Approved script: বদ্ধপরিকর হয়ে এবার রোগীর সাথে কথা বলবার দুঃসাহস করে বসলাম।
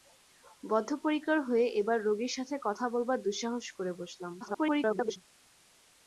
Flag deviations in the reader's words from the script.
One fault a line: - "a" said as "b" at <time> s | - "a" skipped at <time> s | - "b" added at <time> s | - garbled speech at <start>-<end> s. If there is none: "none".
- garbled speech at 4.4-5.2 s